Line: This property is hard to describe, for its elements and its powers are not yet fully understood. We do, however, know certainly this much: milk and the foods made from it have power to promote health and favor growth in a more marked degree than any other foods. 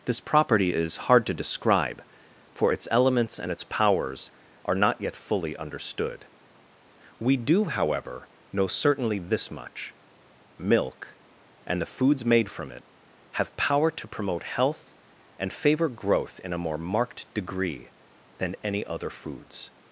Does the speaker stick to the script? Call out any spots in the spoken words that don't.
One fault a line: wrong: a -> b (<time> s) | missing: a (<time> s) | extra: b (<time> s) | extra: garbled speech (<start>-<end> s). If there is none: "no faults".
no faults